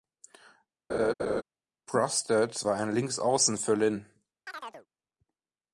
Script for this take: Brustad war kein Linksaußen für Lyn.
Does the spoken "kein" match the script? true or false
false